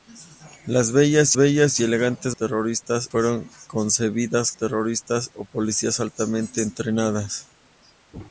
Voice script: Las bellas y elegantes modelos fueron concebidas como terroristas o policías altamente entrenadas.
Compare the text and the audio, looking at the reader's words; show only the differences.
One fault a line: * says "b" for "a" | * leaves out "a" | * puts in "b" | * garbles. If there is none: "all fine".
* puts in "bellas"
* says "terroristas" for "modelos"
* leaves out "como"